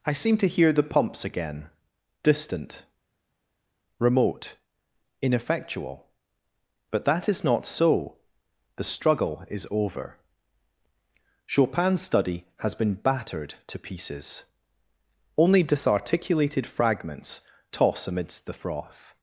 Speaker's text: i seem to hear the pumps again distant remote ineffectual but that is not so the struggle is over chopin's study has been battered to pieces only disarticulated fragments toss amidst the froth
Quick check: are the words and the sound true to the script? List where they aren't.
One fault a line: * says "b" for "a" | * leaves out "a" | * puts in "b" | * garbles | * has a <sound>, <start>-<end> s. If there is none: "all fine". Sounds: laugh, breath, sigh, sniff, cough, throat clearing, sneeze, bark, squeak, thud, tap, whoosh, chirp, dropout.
all fine